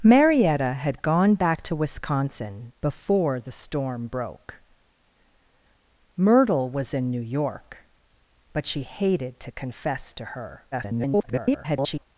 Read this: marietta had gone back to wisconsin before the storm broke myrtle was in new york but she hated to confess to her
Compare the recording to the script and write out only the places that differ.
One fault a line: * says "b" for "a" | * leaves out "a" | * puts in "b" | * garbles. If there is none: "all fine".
* garbles